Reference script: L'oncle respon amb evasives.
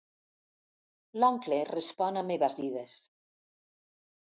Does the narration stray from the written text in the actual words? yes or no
no